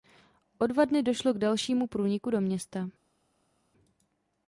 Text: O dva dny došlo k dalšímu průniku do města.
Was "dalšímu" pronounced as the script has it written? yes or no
yes